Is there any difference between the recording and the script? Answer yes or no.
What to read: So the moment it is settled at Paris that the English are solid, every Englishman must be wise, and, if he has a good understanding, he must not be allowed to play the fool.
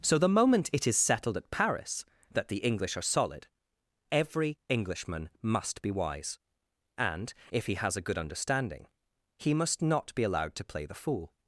no